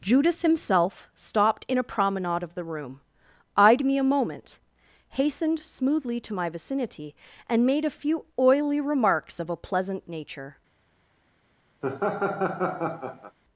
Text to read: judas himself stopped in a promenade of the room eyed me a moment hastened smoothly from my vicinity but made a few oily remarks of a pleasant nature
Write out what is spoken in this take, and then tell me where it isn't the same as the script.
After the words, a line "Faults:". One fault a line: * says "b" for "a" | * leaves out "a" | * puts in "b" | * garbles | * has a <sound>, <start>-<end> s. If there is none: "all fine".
judas himself stopped in a promenade of the room eyed me a moment hastened smoothly to my vicinity and made a few oily remarks of a pleasant nature
Faults:
* says "to" for "from"
* says "and" for "but"
* has a laugh, 11.8-13.4 s